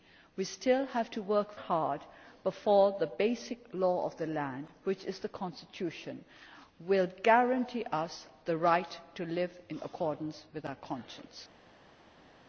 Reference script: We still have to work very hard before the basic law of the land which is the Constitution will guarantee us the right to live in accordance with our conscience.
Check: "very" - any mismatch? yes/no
yes